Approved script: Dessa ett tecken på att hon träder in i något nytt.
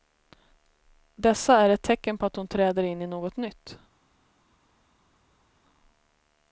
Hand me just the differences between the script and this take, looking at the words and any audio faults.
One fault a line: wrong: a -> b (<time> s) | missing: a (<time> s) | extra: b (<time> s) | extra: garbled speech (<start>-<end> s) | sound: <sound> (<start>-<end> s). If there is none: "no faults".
extra: är (1.6 s)